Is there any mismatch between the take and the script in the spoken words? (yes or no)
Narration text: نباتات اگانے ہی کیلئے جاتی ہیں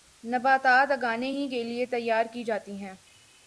yes